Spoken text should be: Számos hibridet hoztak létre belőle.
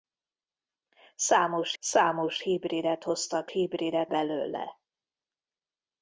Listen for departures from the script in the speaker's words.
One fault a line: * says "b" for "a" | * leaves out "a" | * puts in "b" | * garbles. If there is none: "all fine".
* puts in "számos"
* says "hibridet" for "létre"